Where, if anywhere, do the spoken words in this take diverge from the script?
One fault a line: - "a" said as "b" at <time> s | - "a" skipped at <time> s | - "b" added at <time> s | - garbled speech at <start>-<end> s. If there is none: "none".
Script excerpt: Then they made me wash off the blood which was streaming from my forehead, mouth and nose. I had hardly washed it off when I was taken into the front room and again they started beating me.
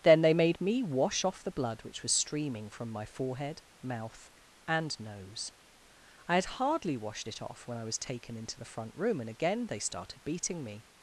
none